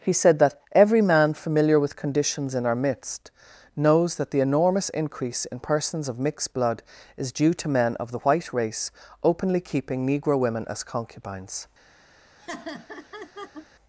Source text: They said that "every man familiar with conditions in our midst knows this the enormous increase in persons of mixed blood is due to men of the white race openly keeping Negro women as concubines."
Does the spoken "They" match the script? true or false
false